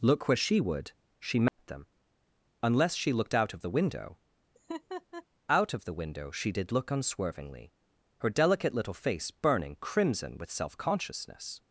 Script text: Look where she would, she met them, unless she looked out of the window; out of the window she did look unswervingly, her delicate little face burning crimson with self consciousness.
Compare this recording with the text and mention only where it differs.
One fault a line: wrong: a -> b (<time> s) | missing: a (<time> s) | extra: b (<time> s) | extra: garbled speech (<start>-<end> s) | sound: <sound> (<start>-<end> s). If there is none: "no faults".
sound: dropout (1.5-1.6 s)
sound: laugh (4.5-5.3 s)